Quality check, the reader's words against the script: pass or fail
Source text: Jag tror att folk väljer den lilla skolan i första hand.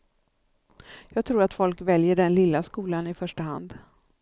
pass